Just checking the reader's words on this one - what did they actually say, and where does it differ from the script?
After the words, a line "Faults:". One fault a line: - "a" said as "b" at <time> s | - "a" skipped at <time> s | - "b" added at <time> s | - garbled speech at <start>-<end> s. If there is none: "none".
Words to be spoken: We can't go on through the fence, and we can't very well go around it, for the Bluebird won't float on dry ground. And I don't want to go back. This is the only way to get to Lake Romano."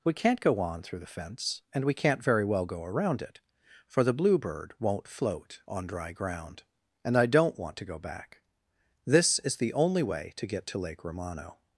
We can't go on through the fence, and we can't very well go around it, for the Bluebird won't float on dry ground. And I don't want to go back. This is the only way to get to Lake Romano."
Faults:
none